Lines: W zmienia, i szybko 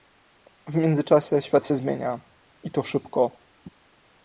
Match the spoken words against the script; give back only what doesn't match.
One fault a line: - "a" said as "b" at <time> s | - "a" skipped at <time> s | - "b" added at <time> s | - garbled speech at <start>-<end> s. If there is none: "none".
- "międzyczasie świat się" added at 0.8 s
- "to" added at 2.7 s